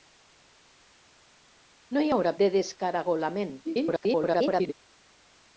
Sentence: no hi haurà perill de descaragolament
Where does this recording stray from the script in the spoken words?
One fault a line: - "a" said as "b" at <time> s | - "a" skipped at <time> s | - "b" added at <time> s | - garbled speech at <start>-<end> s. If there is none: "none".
- "perill" skipped at 2.3 s
- garbled speech at 3.6-4.7 s